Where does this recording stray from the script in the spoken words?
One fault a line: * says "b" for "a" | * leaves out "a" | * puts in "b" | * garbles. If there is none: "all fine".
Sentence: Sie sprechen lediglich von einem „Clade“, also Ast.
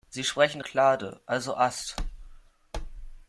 * leaves out "lediglich von einem"